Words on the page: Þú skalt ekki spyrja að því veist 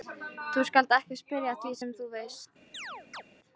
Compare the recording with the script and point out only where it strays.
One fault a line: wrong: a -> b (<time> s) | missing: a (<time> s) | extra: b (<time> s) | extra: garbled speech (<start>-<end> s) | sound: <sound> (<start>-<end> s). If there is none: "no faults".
extra: sem þú (1.8 s)
sound: chirp (2.7-3.2 s)